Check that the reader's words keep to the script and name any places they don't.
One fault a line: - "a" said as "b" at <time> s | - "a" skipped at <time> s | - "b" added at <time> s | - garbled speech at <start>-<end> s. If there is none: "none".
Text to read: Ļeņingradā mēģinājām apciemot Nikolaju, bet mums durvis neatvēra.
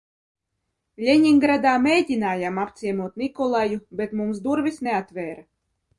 none